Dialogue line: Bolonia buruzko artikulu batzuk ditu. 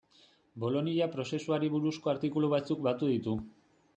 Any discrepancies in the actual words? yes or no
yes